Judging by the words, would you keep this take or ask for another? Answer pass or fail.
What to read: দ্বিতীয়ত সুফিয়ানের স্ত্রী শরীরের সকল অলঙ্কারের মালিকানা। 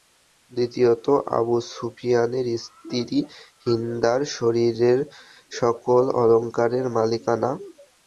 fail